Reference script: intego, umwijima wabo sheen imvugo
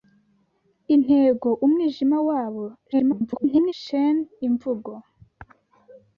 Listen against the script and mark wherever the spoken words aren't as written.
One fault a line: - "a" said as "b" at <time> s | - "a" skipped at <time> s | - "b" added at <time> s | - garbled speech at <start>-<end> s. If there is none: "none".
- garbled speech at 2.9-3.7 s